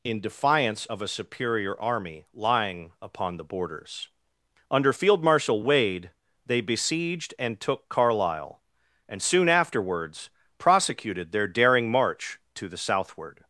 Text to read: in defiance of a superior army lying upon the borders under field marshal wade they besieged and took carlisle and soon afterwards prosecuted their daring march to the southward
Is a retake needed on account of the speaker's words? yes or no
no